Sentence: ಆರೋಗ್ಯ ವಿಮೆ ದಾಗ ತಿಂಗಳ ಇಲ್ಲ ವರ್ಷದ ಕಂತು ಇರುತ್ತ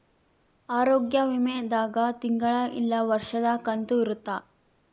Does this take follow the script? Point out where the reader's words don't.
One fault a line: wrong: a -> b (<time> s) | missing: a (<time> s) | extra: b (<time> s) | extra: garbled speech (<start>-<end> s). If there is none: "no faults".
no faults